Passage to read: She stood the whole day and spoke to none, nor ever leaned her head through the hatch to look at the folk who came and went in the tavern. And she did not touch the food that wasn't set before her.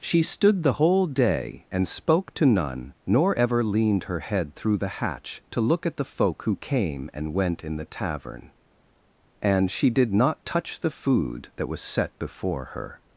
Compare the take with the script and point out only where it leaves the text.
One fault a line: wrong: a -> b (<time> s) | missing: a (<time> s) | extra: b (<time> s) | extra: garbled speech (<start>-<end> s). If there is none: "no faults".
wrong: wasn't -> was (11.7 s)